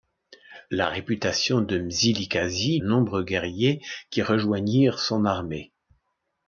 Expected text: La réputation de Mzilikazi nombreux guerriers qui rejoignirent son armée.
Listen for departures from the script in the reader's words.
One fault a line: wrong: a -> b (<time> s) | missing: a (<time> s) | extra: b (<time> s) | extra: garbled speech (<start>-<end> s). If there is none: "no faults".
no faults